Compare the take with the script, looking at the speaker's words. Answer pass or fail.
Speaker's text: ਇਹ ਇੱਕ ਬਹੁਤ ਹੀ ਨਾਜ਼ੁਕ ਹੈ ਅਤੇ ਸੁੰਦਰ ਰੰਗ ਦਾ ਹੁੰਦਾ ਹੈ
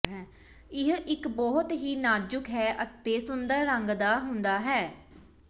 pass